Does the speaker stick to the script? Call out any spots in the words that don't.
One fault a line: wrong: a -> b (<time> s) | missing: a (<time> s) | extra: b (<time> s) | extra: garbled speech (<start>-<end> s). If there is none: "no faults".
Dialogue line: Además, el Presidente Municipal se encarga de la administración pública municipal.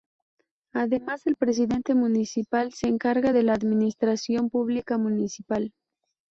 no faults